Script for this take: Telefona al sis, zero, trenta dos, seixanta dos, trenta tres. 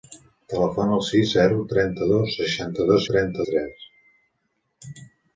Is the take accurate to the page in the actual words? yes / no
yes